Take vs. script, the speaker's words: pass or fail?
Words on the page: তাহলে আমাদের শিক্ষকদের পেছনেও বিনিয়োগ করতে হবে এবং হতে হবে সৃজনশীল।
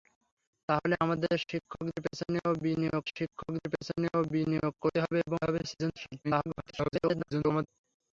fail